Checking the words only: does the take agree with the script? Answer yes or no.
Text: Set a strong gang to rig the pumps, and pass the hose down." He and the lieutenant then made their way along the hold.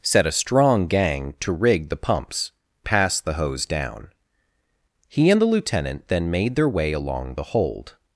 no